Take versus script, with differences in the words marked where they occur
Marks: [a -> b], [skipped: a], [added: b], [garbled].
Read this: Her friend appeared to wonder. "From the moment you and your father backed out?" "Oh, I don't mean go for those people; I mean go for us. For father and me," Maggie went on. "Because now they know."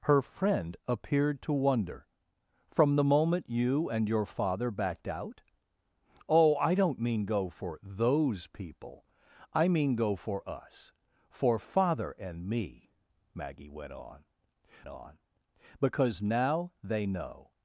Her friend appeared to wonder. "From the moment you and your father backed out?" "Oh, I don't mean go for those people; I mean go for us. For father and me," Maggie went on. [added: on] "Because now they know."